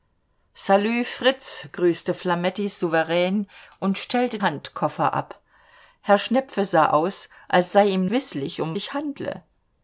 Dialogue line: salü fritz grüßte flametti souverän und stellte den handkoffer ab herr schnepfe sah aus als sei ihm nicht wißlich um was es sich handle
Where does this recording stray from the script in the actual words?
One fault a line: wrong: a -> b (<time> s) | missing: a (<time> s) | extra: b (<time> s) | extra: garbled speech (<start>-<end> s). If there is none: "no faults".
missing: den (4.4 s)
missing: nicht (8.1 s)
missing: was es (8.8 s)